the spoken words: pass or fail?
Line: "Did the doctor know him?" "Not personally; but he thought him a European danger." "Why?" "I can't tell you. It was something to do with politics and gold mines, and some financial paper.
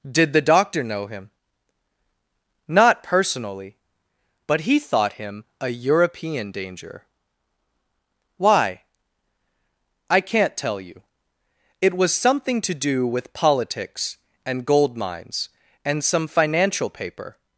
pass